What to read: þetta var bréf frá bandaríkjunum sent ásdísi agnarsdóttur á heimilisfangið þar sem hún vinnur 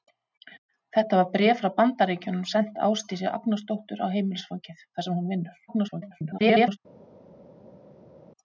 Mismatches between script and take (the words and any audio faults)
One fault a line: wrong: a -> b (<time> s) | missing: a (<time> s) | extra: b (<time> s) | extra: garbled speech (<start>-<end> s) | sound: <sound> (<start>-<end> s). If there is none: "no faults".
extra: garbled speech (5.7-6.8 s)